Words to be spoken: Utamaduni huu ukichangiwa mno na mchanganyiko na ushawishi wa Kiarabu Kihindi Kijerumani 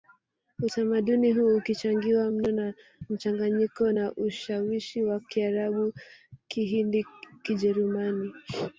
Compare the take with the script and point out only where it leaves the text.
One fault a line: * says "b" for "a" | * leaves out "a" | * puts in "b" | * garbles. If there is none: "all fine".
all fine